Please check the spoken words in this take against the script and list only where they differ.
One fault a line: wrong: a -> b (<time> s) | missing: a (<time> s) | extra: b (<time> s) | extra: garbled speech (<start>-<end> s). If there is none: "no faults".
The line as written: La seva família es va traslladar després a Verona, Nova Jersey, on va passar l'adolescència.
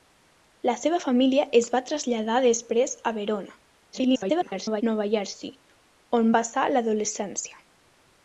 extra: garbled speech (3.9-4.8 s)
missing: va (6.3 s)